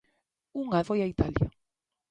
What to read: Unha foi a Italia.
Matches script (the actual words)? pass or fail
pass